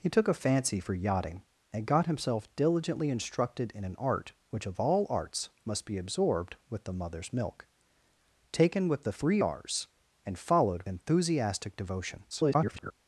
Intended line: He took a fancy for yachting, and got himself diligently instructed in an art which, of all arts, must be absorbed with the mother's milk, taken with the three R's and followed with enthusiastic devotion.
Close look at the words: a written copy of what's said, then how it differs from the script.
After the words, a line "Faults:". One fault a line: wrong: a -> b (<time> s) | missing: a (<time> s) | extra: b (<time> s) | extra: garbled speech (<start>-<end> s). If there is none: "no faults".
He took a fancy for yachting, and got himself diligently instructed in an art which, of all arts, must be absorbed with the mother's milk, taken with the three R's and followed enthusiastic devotion. [garbled]
Faults:
missing: with (10.8 s)
extra: garbled speech (12.3-12.9 s)